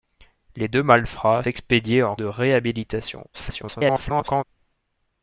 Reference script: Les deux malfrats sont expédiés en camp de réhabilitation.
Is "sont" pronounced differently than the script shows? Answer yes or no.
yes